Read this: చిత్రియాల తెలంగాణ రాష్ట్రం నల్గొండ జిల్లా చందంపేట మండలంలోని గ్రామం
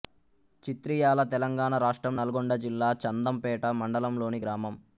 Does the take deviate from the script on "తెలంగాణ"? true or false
false